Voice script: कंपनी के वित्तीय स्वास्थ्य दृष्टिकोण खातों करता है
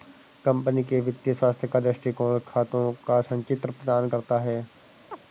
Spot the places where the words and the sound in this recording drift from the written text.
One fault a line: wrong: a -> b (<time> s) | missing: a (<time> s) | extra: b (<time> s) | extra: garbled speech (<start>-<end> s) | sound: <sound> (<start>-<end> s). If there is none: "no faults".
extra: का (1.7 s)
extra: का संचित्र प्रदान (3.1 s)
sound: chirp (5.1-5.2 s)